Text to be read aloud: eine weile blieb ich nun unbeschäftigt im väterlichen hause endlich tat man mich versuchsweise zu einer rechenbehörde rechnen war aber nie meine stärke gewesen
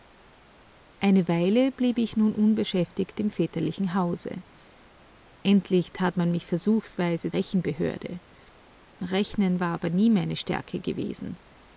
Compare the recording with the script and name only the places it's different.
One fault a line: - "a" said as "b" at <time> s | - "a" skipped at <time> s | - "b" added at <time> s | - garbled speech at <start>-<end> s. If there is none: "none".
- "zu einer" skipped at 7.3 s